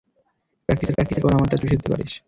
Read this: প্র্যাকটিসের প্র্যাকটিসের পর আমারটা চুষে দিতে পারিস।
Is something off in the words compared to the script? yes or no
no